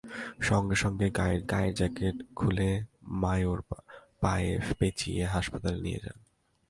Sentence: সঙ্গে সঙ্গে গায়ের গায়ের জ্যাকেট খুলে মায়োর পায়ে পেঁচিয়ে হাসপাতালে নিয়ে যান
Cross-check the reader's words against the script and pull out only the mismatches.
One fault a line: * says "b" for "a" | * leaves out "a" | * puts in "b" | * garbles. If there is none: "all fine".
all fine